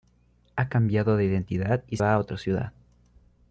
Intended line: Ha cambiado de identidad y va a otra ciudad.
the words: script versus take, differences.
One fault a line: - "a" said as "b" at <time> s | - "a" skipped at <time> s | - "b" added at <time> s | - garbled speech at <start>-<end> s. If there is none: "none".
none